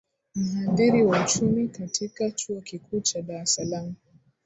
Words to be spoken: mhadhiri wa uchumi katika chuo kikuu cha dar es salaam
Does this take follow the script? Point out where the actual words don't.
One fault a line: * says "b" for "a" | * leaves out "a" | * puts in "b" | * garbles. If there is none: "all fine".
all fine